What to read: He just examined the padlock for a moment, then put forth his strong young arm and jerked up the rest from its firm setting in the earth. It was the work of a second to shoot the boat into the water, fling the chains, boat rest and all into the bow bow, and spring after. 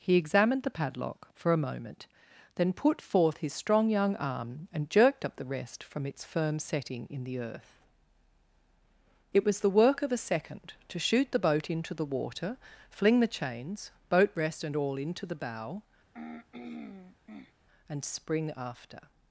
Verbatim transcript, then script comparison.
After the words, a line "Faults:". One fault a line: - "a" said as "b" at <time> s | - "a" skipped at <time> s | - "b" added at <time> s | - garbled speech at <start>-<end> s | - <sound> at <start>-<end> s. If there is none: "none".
He examined the padlock for a moment, then put forth his strong young arm and jerked up the rest from its firm setting in the earth. It was the work of a second to shoot the boat into the water, fling the chains, boat rest and all into the bow, and spring after.
Faults:
- "just" skipped at 0.1 s
- "bow" skipped at 15.8 s
- throat clearing at 16.1-17.5 s